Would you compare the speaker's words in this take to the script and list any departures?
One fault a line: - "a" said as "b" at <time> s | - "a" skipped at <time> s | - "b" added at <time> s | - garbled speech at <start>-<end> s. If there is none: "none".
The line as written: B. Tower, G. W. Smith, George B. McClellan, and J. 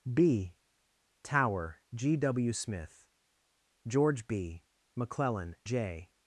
- "and" skipped at 5.5 s